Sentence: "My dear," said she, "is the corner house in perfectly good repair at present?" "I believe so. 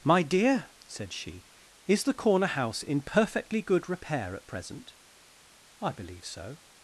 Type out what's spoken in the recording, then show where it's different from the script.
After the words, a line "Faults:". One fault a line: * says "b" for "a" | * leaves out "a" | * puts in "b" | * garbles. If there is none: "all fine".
"My dear," said she, "is the corner house in perfectly good repair at present?" "I believe so.
Faults:
all fine